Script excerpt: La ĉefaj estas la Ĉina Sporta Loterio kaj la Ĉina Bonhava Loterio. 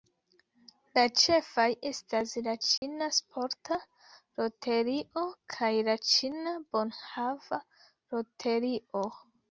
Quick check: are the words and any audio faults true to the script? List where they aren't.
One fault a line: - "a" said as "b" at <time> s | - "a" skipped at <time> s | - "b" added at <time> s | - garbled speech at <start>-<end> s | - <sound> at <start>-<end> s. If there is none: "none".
- dropout at 2.8-2.8 s